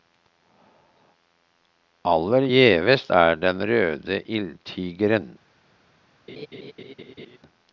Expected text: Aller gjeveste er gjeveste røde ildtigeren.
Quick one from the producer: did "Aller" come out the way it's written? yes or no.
yes